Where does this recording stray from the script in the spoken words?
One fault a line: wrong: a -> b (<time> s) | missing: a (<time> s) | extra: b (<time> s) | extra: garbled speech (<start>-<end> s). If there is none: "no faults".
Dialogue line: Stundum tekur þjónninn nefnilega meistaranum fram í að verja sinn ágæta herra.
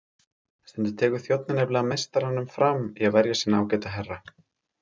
no faults